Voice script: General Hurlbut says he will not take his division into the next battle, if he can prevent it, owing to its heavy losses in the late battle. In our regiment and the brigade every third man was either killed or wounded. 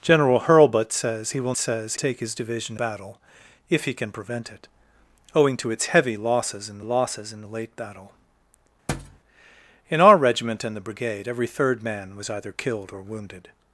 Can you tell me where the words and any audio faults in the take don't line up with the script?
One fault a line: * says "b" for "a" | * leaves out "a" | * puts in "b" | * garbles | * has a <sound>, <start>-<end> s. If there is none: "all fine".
* says "says" for "not"
* leaves out "into the next"
* puts in "losses in"
* has a thud, 8.9-9.2 s